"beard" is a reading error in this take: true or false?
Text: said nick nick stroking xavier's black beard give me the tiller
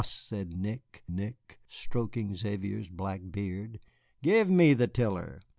false